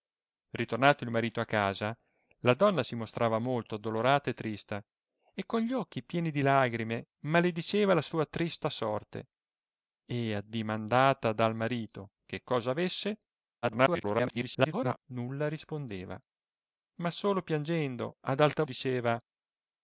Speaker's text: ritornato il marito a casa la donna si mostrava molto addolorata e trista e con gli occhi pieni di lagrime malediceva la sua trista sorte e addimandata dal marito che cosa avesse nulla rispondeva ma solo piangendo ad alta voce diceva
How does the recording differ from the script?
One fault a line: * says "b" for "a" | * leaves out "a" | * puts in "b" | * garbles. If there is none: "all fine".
* garbles
* leaves out "voce"